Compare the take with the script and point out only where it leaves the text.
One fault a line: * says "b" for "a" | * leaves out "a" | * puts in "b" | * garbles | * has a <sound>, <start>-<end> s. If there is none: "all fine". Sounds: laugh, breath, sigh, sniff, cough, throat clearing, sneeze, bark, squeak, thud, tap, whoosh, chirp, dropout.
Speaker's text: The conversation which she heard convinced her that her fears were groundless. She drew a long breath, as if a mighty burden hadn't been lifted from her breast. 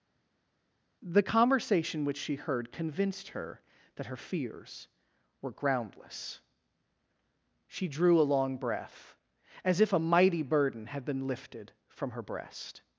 * says "had" for "hadn't"